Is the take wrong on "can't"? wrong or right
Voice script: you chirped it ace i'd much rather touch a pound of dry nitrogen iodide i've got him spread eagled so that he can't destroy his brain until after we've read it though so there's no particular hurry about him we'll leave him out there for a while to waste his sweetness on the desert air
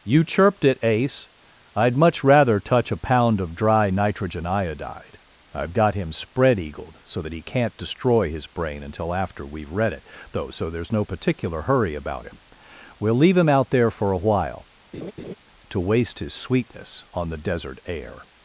right